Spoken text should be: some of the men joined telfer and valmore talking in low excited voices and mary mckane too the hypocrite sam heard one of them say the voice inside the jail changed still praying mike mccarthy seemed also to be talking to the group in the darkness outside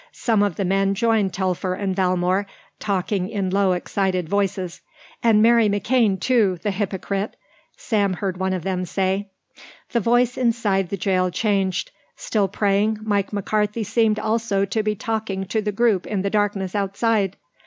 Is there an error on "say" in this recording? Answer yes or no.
no